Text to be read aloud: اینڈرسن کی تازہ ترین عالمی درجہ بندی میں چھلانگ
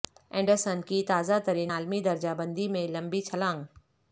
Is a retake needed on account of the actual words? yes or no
yes